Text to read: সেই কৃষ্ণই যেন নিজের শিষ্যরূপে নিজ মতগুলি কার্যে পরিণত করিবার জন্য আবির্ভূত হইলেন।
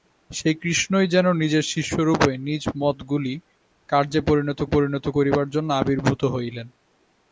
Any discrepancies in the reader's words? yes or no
yes